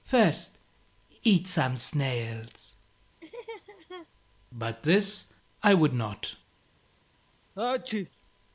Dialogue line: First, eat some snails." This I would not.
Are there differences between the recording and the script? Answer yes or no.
yes